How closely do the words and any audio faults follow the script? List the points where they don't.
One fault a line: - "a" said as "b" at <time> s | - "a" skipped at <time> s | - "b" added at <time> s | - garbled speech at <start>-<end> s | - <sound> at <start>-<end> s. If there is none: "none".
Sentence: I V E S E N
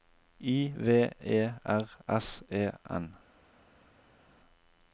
- "R" added at 1.6 s